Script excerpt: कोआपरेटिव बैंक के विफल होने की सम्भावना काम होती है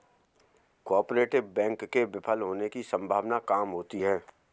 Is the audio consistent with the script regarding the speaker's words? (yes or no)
yes